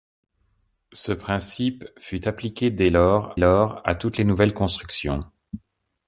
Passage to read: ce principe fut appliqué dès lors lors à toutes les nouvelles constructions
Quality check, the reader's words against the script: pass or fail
pass